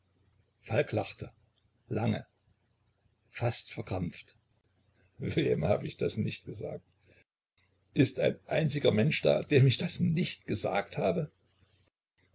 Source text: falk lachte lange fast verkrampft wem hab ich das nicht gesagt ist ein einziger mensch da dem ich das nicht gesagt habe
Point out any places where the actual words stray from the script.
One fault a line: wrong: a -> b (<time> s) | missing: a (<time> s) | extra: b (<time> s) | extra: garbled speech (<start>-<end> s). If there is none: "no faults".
no faults